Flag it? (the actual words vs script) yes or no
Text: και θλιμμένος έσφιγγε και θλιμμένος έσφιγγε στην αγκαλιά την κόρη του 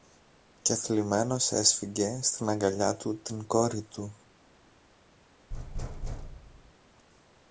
yes